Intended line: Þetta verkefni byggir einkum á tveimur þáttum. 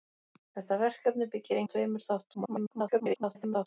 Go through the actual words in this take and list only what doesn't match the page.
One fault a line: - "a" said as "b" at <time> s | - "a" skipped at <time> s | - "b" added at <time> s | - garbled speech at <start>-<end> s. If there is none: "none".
- "einkum" skipped at 1.6 s
- garbled speech at 2.3-3.7 s